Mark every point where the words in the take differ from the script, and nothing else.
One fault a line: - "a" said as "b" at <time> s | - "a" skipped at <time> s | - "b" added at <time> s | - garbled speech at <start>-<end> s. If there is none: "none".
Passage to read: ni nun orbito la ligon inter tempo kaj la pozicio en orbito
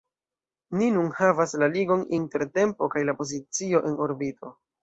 - "orbito" said as "havas" at 1.2 s